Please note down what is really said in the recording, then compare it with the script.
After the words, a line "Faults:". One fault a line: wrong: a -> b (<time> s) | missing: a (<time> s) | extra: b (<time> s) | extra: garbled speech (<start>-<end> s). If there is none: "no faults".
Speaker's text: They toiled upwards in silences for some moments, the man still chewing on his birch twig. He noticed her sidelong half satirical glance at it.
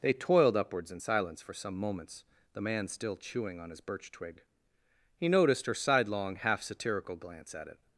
They toiled upwards in silence for some moments, the man still chewing on his birch twig. He noticed her sidelong half satirical glance at it.
Faults:
wrong: silences -> silence (1.0 s)